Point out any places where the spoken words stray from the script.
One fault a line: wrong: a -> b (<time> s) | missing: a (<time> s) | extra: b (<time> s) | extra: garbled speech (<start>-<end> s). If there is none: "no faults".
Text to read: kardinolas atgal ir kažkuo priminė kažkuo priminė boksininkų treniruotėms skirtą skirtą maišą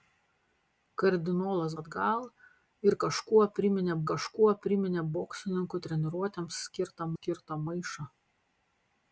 no faults